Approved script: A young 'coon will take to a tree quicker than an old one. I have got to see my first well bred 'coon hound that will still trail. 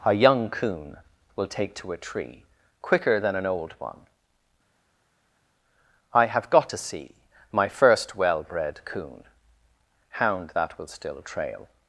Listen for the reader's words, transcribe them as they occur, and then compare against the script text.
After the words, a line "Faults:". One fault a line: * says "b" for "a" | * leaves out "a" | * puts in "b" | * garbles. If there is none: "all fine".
A young 'coon will take to a tree quicker than an old one. I have got to see my first well bred 'coon hound that will still trail.
Faults:
all fine